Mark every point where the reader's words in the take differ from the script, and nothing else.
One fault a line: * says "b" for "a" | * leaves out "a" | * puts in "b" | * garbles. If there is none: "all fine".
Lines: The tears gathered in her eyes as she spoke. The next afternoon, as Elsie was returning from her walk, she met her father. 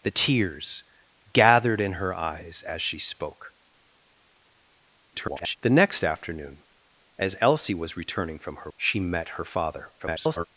* garbles
* leaves out "walk"
* garbles